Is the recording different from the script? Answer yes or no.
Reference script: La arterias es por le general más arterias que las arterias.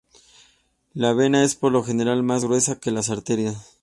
yes